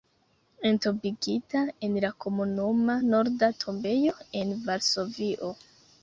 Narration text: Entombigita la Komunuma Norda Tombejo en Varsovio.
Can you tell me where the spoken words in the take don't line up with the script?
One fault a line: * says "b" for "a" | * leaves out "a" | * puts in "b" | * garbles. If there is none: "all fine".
* puts in "en"